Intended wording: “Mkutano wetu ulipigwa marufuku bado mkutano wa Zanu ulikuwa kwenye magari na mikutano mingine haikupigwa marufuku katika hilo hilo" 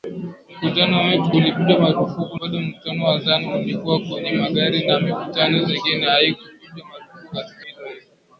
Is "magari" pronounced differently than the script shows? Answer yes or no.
no